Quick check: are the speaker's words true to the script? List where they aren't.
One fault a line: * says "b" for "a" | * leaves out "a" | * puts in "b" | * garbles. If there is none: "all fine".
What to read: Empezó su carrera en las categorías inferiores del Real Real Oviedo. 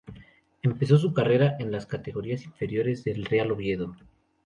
* leaves out "Real"